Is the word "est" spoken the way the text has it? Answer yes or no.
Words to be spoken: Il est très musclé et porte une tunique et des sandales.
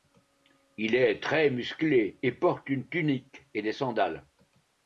yes